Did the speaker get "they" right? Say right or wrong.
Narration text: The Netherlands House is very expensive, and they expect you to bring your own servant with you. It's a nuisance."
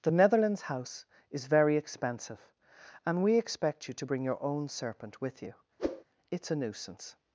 wrong